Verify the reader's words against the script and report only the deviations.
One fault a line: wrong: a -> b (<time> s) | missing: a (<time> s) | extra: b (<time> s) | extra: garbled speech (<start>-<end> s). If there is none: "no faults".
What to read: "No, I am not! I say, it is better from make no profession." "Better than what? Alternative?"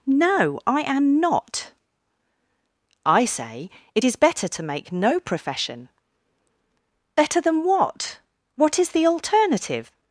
wrong: from -> to (4.5 s)
extra: What is the (8.6 s)